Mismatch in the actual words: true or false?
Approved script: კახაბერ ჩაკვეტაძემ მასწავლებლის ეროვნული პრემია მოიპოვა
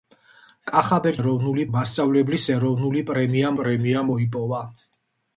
true